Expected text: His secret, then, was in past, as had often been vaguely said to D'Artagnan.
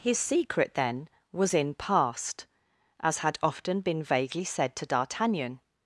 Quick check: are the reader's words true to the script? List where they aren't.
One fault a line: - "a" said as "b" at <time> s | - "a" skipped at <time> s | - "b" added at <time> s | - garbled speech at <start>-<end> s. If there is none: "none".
none